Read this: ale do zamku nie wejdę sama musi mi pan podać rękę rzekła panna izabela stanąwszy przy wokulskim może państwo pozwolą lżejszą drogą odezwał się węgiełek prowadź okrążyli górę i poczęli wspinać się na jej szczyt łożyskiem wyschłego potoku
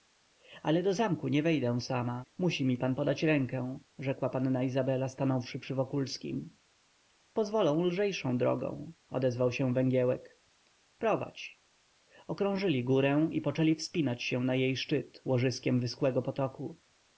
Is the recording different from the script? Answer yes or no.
yes